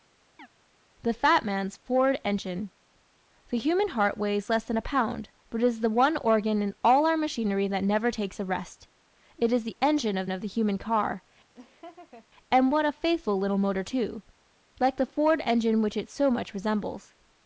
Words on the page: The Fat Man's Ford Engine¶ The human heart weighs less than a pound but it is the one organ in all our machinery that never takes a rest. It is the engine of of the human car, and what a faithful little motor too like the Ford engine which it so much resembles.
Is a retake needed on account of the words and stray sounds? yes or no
yes